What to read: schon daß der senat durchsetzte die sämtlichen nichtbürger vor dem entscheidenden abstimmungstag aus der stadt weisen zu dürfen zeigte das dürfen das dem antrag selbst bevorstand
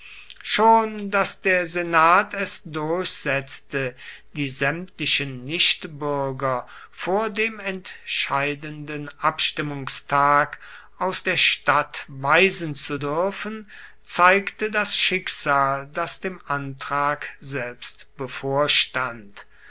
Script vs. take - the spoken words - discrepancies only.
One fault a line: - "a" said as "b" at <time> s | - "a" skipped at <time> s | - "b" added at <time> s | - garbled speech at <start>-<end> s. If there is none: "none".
- "es" added at 2.3 s
- "dürfen" said as "schicksal" at 15.0 s